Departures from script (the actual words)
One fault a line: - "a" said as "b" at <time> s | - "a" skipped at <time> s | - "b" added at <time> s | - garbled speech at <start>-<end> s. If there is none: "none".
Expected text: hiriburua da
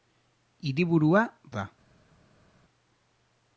none